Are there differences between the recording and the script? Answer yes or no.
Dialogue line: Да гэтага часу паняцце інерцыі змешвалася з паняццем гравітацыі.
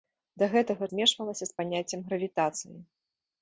yes